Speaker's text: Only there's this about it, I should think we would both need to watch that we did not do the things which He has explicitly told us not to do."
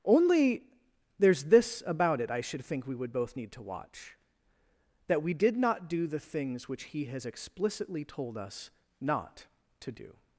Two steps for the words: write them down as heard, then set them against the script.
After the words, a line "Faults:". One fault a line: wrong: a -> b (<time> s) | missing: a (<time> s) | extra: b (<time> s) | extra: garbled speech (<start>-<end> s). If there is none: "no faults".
Only there's this about it, I should think we would both need to watch that we did not do the things which He has explicitly told us not to do."
Faults:
no faults